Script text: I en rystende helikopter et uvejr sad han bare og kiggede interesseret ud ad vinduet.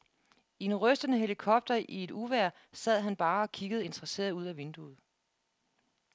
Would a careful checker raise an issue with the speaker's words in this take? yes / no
yes